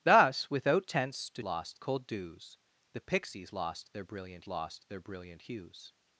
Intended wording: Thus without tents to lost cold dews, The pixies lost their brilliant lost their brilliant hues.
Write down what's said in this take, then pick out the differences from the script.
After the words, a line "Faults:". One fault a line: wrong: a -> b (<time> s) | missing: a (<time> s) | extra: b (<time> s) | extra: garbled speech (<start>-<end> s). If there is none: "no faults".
Thus without tents to lost cold dews, The pixies lost their brilliant lost their brilliant hues.
Faults:
no faults